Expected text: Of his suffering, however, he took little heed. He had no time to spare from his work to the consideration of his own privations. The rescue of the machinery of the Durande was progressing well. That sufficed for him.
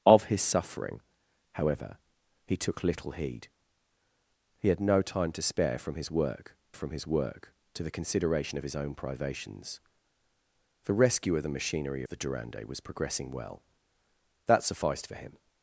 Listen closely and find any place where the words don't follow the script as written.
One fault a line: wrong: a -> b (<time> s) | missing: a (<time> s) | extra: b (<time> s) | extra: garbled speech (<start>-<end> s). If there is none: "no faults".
extra: from his work (6.7 s)
missing: of (12.0 s)